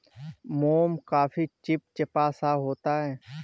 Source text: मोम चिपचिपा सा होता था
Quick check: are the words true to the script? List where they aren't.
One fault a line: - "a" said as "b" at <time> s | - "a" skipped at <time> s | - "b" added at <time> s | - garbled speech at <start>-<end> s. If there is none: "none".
- "काफी" added at 1.1 s
- "था" said as "है" at 3.0 s